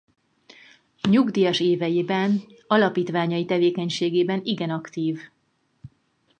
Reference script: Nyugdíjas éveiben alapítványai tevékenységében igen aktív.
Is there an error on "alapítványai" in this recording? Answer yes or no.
no